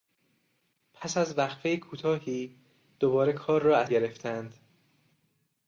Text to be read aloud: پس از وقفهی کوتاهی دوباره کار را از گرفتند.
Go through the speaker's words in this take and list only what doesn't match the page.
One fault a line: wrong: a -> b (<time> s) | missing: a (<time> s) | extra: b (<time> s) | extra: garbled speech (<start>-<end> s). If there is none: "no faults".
no faults